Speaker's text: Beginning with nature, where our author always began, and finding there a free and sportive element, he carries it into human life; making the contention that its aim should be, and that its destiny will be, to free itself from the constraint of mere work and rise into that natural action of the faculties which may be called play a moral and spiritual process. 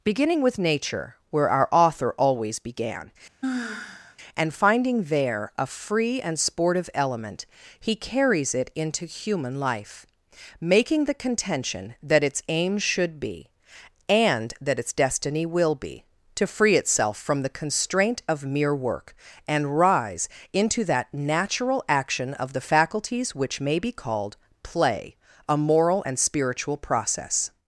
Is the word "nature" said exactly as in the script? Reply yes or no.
yes